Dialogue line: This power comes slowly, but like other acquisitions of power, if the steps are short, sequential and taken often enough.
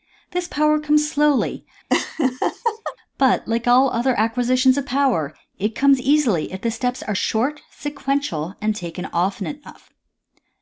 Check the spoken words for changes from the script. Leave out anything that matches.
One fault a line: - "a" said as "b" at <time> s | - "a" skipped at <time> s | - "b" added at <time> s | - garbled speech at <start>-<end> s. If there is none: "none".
- "all" added at 3.7 s
- "it comes easily" added at 5.6 s